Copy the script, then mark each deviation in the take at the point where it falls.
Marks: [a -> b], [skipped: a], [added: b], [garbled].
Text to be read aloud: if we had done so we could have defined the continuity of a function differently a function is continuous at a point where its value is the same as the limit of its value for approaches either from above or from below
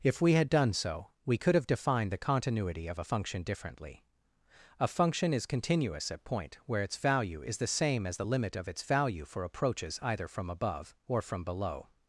if we had done so we could have defined the continuity of a function differently a function is continuous at [skipped: a] point where its value is the same as the limit of its value for approaches either from above or from below